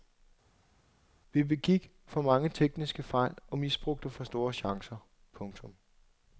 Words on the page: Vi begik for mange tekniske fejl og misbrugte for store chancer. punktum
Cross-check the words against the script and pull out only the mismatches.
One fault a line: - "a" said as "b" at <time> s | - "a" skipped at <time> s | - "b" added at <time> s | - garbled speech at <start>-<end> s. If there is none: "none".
none